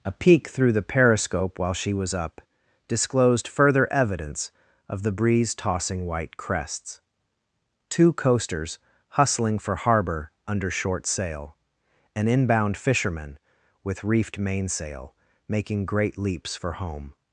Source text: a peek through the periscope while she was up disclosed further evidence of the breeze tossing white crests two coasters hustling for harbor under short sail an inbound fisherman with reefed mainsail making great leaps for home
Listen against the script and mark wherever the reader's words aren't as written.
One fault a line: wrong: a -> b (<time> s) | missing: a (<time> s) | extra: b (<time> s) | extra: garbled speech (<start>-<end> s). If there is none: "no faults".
no faults